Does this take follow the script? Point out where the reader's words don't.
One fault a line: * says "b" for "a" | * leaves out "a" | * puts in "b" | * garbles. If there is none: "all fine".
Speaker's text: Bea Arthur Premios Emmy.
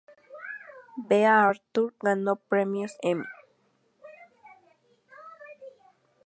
* puts in "ganó"